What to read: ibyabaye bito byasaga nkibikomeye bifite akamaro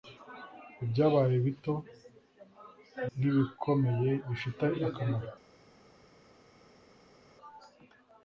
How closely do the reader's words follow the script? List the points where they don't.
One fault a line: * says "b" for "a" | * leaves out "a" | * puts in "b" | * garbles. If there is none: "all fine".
* leaves out "byasaga"